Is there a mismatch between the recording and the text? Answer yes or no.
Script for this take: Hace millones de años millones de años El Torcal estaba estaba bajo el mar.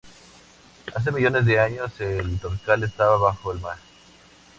yes